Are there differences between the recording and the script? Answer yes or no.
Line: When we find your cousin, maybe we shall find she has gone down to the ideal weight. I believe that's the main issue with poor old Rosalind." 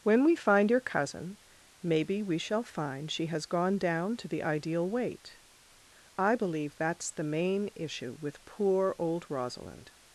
no